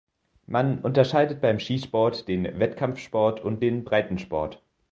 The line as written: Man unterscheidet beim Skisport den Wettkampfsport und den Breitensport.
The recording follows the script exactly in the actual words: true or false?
true